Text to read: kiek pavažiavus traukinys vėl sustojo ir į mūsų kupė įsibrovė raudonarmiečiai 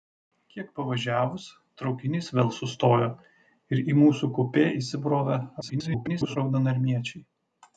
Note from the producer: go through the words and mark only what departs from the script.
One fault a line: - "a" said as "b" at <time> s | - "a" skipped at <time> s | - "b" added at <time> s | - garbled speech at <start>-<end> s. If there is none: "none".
- garbled speech at 5.6-6.4 s